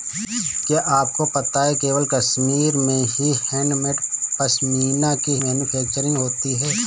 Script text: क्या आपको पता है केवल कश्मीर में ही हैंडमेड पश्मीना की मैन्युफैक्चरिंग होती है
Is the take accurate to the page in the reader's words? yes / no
yes